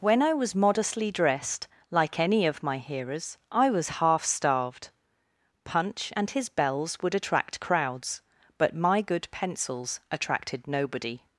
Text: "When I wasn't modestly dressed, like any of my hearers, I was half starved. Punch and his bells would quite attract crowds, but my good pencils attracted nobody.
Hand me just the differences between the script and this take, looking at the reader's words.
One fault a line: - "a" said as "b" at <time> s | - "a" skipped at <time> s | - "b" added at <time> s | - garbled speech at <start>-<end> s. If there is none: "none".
- "wasn't" said as "was" at 0.3 s
- "quite" skipped at 7.1 s